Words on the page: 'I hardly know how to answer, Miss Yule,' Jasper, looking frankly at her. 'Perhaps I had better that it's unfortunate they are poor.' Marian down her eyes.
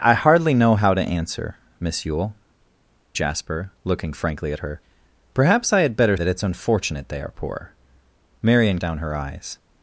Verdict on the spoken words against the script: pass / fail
pass